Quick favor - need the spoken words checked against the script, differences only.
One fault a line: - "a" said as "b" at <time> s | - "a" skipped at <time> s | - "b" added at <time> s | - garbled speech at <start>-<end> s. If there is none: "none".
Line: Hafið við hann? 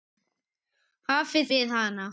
none